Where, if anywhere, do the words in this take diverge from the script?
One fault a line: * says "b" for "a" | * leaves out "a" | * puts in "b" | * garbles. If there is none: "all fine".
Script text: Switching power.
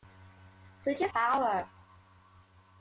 all fine